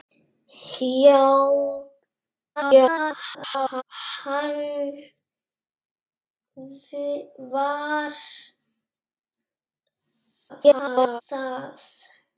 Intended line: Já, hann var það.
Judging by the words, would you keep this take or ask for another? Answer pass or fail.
fail